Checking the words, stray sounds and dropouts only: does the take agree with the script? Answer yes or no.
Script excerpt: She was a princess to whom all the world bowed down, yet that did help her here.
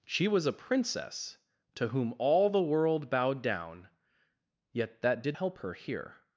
yes